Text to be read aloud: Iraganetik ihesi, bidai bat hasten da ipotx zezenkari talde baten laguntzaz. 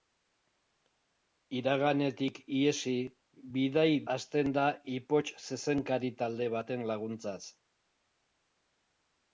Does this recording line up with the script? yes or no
no